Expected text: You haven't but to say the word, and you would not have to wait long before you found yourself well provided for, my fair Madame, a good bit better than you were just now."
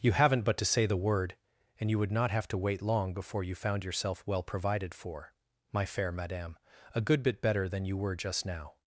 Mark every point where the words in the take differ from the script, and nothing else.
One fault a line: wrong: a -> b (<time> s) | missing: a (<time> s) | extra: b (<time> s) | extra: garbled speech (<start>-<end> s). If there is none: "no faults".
no faults